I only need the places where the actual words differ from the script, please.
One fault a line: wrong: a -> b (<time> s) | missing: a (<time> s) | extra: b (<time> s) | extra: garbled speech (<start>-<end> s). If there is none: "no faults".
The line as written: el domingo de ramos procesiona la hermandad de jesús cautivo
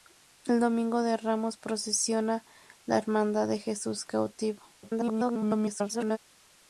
extra: garbled speech (4.8-6.2 s)